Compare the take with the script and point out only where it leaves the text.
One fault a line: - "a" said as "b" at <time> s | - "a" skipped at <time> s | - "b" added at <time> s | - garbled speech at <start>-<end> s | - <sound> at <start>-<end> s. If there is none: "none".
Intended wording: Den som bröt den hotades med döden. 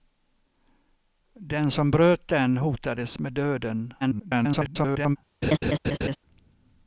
- garbled speech at 4.0-5.2 s
- laugh at 5.4-6.2 s